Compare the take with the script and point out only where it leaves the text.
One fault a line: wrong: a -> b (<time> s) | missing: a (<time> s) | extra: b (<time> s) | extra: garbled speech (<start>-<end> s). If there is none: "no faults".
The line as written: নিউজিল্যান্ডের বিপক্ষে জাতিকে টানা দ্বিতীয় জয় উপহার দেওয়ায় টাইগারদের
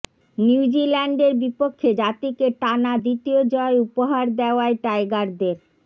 no faults